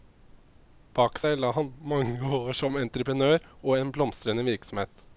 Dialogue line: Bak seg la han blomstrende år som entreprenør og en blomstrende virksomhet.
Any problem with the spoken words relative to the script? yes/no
yes